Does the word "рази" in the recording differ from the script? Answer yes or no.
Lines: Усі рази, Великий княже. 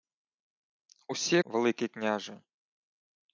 yes